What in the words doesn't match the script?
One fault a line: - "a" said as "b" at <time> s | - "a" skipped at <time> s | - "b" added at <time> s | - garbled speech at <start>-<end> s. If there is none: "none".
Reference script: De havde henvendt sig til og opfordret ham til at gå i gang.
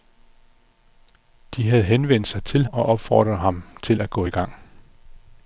none